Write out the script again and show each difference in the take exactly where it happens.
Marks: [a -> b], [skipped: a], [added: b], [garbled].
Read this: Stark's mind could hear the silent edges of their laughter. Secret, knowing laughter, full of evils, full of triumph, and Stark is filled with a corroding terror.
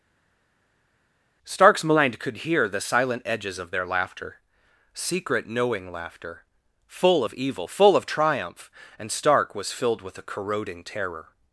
Stark's mind could hear the silent edges of their laughter. Secret, knowing laughter, full of [evils, -> evil] full of triumph, and Stark [is -> was] filled with a corroding terror.